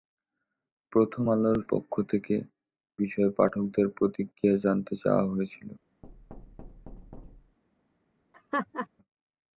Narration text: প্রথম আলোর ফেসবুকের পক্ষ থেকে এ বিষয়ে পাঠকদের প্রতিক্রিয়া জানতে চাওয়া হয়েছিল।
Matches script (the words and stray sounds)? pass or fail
fail